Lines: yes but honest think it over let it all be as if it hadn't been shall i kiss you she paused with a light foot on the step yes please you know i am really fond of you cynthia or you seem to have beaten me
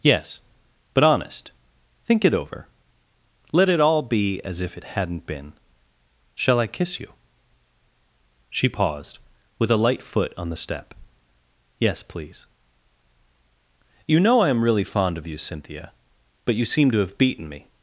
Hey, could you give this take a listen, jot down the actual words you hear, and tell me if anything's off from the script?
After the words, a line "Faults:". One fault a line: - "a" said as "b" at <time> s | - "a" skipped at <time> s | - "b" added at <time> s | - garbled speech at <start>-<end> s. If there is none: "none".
yes but honest think it over let it all be as if it hadn't been shall i kiss you she paused with a light foot on the step yes please you know i am really fond of you cynthia but you seem to have beaten me
Faults:
- "or" said as "but" at 16.4 s